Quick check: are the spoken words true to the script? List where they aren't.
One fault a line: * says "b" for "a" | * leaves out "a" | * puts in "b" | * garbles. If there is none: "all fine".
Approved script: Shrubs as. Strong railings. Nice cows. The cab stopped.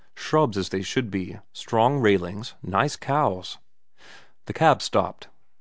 * puts in "they should be"